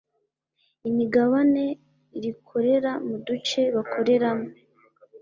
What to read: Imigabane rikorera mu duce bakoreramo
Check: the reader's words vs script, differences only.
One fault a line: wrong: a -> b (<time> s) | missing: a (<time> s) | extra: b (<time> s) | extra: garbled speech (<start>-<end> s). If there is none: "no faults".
no faults